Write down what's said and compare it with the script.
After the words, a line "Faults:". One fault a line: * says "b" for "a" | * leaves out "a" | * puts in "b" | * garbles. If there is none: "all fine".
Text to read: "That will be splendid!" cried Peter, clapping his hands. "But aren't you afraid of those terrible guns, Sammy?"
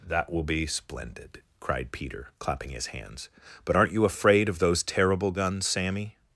"That will be splendid!" cried Peter, clapping his hands. "But aren't you afraid of those terrible guns, Sammy?"
Faults:
all fine